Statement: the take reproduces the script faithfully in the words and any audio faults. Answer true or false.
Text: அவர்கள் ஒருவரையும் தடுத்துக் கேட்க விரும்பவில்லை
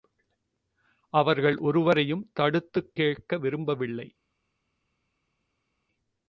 true